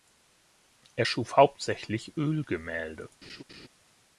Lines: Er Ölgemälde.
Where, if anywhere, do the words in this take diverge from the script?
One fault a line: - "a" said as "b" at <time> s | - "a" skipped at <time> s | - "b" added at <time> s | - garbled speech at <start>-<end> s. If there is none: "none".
- "schuf hauptsächlich" added at 1.0 s